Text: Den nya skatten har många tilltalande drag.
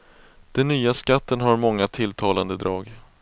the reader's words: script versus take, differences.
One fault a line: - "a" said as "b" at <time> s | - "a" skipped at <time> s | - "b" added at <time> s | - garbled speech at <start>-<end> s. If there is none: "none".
none